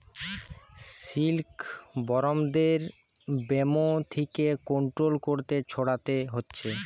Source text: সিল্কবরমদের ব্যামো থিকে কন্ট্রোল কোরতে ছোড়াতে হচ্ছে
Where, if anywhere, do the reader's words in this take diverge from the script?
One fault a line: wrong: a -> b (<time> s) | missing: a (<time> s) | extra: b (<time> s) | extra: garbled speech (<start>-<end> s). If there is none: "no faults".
no faults